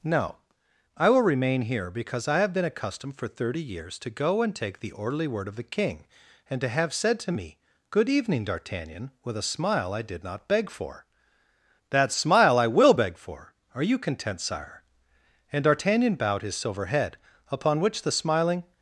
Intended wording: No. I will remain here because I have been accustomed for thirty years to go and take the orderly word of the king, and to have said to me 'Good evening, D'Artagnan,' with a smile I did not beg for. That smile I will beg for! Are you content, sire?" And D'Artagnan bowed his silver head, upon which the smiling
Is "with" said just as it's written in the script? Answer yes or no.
yes